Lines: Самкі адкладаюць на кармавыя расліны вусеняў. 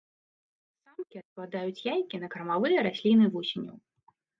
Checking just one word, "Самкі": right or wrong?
right